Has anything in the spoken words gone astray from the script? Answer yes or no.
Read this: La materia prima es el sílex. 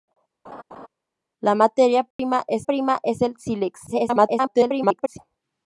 yes